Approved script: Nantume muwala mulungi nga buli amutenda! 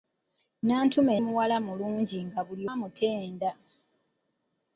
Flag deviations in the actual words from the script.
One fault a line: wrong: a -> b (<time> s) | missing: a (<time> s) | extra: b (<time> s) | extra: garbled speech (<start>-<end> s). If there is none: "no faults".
no faults